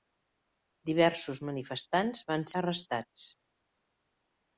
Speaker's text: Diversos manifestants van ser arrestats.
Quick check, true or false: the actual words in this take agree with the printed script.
false